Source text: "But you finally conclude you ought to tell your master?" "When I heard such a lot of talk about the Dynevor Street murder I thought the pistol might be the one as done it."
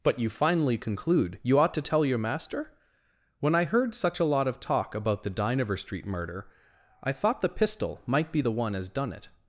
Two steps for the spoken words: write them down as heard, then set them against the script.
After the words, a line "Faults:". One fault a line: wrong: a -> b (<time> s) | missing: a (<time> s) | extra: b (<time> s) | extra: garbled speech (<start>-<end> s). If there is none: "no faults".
"But you finally conclude you ought to tell your master?" "When I heard such a lot of talk about the Dynevor Street murder I thought the pistol might be the one as done it."
Faults:
no faults